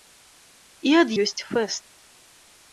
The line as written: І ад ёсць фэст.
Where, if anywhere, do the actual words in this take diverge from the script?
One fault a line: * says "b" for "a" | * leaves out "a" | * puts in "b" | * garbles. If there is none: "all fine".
all fine